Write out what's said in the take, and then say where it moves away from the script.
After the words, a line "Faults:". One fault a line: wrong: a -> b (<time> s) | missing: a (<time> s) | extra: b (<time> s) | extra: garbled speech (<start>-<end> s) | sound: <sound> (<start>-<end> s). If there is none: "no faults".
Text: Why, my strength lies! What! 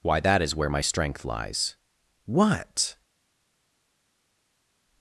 Why, that is where my strength lies! What!
Faults:
extra: that is where (0.2 s)